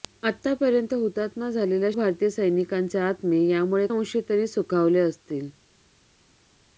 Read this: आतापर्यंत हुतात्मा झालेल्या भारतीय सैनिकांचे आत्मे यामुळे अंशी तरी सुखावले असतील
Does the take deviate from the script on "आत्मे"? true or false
false